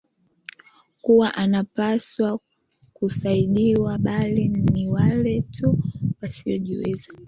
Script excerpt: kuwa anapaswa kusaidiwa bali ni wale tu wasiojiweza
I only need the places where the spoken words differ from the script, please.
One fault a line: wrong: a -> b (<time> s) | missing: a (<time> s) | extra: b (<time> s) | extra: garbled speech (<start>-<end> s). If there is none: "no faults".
no faults